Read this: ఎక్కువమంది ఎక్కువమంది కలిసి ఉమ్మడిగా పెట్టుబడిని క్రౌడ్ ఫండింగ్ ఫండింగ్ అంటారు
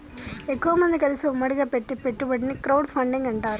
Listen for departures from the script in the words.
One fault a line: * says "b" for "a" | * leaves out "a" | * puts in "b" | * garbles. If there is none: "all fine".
* leaves out "ఎక్కువమంది"
* puts in "పెట్టే"
* leaves out "ఫండింగ్"